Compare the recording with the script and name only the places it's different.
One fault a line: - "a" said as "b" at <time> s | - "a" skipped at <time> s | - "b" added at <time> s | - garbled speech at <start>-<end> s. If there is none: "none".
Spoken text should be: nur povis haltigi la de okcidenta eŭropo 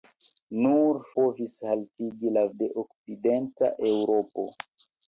none